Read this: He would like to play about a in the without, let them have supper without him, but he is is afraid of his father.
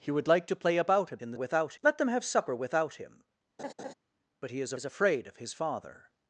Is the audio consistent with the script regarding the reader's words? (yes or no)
yes